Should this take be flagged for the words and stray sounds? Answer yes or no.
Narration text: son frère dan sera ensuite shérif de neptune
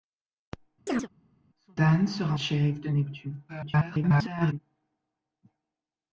yes